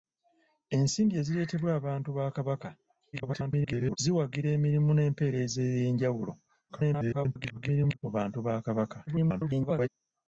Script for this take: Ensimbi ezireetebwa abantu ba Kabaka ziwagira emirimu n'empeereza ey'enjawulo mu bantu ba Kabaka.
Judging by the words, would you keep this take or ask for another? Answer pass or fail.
fail